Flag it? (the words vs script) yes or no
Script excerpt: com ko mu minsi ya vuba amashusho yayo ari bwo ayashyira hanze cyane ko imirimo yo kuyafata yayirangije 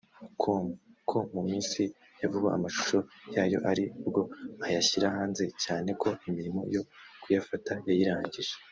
no